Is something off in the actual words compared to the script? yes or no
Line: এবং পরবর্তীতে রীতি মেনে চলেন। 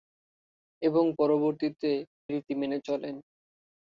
no